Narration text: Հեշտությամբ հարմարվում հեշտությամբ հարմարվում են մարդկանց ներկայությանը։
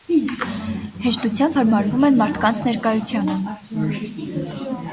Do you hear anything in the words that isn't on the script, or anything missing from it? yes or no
yes